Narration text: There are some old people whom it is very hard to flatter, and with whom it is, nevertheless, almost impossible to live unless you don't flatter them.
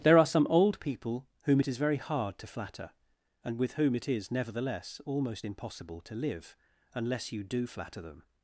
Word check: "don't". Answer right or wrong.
wrong